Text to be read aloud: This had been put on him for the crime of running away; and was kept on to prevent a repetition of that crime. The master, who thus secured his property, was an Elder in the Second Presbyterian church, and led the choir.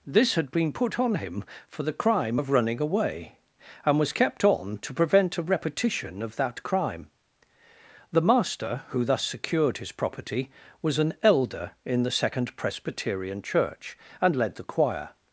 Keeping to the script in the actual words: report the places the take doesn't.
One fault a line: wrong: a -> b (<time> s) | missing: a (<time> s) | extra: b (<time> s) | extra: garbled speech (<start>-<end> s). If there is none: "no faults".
no faults